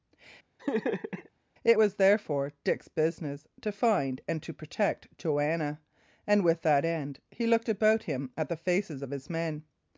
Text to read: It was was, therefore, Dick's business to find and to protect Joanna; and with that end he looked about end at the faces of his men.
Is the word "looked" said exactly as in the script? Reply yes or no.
yes